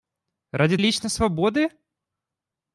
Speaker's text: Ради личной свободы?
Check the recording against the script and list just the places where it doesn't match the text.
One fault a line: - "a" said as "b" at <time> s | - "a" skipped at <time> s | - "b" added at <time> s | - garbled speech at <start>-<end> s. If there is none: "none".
none